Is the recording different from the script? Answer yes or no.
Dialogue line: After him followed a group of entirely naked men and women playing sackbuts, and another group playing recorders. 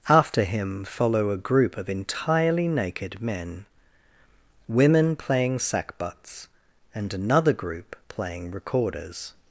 yes